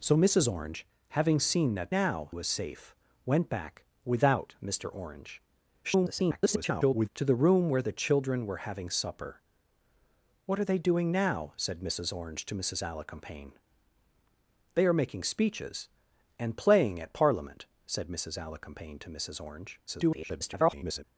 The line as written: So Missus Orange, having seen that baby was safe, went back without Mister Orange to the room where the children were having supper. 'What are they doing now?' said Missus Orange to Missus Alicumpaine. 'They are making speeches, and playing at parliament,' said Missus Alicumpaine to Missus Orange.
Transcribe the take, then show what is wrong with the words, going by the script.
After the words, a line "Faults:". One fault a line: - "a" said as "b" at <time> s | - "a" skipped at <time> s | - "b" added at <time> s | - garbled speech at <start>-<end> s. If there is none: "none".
So Missus Orange, having seen that now was safe, went back without Mister Orange [garbled] to the room where the children were having supper. 'What are they doing now?' said Missus Orange to Missus Alicumpaine. 'They are making speeches, and playing at parliament,' said Missus Alicumpaine to Missus Orange. [garbled]
Faults:
- "baby" said as "now" at 1.9 s
- garbled speech at 5.8-7.1 s
- garbled speech at 19.9-21.0 s